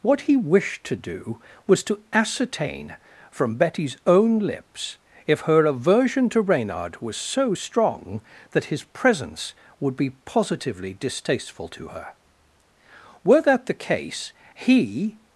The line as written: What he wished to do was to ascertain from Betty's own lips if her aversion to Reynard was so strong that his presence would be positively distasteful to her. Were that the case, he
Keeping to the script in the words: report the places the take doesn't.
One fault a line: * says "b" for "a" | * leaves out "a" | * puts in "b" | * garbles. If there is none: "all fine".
all fine